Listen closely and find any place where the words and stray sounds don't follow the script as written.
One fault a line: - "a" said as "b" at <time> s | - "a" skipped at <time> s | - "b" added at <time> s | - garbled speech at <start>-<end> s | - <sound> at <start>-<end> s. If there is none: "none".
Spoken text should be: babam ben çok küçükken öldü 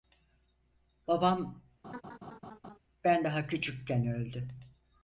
- laugh at 1.8-2.8 s
- "çok" said as "daha" at 3.2 s